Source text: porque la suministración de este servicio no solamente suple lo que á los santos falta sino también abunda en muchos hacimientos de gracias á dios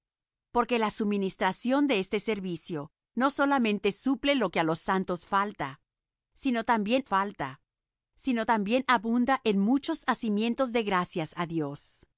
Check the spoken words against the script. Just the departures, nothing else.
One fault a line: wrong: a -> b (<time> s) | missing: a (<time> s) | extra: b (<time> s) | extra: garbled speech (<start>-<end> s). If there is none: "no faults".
extra: falta sino también (7.0 s)